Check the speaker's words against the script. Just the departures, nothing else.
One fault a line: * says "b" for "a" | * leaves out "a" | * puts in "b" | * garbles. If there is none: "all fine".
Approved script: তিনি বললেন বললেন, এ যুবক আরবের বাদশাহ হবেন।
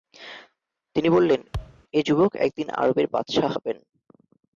* leaves out "বললেন"
* puts in "একদিন"